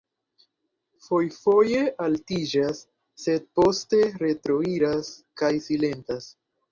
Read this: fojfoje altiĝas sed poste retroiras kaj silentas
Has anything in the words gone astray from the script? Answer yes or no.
no